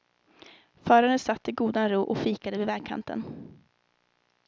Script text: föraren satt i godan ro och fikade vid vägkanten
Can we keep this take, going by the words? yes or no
yes